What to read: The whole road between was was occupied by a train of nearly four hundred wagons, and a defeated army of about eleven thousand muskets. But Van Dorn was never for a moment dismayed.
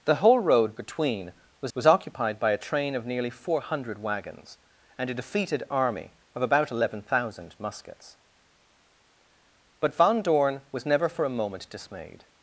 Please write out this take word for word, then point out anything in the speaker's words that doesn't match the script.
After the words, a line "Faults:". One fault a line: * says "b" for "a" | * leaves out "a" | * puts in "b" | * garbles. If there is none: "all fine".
The whole road between was was occupied by a train of nearly four hundred wagons, and a defeated army of about eleven thousand muskets. But Van Dorn was never for a moment dismayed.
Faults:
all fine